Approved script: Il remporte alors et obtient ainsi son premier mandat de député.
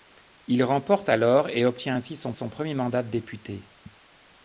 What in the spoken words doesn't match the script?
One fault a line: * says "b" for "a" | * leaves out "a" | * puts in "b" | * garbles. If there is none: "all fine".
* puts in "son"